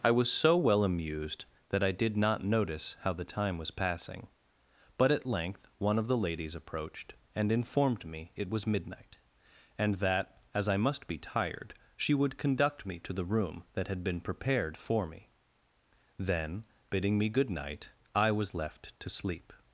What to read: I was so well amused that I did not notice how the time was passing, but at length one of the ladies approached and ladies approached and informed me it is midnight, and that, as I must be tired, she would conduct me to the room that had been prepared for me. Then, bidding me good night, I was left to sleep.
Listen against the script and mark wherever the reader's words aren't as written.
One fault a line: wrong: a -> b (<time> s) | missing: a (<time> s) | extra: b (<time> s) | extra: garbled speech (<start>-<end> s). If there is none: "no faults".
missing: ladies approached and (7.5 s)
wrong: is -> was (8.5 s)